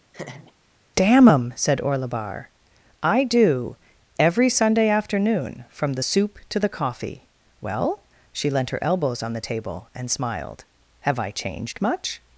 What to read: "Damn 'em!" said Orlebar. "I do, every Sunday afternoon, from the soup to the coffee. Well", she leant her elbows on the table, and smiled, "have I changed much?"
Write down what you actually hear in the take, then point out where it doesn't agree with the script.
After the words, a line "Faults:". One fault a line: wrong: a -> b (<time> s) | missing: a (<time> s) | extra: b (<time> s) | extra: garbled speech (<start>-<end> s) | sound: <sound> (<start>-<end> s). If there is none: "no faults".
"Damn 'em!" said Orlebar. "I do, every Sunday afternoon, from the soup to the coffee. Well", she leant her elbows on the table, and smiled, "have I changed much?"
Faults:
sound: laugh (0.1-0.5 s)